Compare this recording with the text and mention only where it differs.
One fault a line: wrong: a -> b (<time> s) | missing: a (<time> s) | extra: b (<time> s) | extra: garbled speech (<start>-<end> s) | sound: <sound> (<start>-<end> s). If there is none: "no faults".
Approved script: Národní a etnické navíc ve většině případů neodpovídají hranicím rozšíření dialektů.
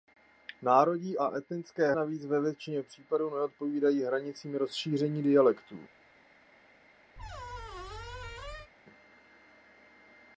sound: squeak (7.2-8.7 s)